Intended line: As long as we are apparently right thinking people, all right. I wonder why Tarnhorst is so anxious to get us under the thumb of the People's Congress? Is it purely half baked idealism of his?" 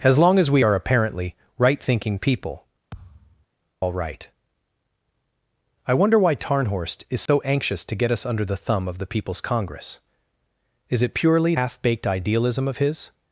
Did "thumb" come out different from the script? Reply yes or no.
no